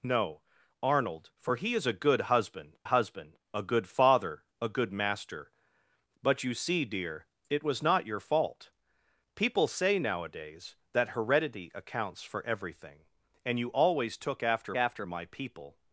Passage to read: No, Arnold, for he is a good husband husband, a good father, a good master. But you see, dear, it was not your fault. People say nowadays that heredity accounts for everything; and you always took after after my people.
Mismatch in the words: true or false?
false